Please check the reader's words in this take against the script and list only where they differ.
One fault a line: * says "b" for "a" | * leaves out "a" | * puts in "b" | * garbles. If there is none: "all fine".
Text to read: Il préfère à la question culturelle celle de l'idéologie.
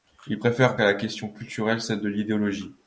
all fine